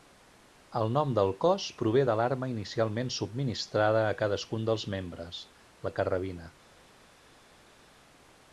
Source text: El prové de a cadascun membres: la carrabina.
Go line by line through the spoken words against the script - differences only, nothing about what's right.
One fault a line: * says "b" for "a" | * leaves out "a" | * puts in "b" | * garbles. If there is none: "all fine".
* puts in "nom del cos"
* puts in "l'arma inicialment subministrada"
* puts in "dels"